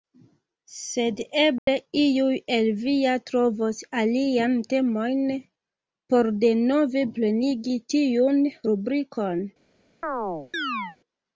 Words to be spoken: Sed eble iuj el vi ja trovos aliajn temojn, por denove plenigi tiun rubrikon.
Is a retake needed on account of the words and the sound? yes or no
yes